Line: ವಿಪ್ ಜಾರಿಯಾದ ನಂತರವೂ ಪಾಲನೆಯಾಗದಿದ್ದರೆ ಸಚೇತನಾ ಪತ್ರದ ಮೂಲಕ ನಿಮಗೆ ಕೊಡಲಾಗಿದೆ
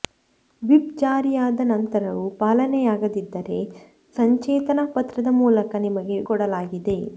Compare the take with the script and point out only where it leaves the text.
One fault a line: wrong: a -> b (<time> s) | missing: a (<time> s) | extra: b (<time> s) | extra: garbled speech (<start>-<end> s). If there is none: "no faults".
no faults